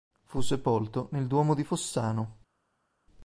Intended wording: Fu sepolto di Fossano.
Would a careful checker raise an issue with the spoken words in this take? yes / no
yes